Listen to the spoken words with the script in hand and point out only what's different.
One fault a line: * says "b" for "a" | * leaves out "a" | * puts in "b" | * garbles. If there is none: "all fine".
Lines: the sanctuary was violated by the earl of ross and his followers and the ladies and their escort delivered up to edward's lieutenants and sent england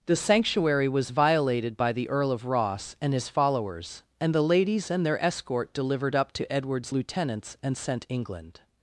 all fine